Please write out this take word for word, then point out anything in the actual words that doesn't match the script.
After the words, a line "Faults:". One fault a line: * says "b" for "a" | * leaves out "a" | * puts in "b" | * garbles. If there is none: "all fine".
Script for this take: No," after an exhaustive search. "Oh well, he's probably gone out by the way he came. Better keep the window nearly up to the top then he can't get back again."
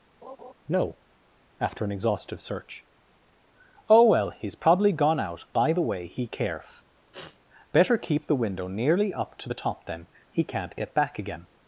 No," after an exhaustive search. "Oh well, he's probably gone out by the way he caref. Better keep the window nearly up to the top then he can't get back again."
Faults:
* says "caref" for "came"